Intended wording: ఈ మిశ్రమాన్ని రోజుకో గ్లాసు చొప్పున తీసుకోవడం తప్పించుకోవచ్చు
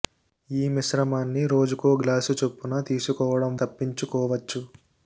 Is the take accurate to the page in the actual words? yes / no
yes